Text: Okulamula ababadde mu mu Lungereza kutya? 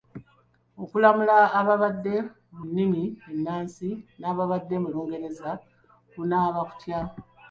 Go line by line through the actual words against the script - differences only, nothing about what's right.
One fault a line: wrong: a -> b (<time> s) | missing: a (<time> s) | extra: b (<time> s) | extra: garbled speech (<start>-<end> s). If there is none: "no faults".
extra: nnimi ennansi n'ababadde (2.7 s)
extra: kunaaba (6.1 s)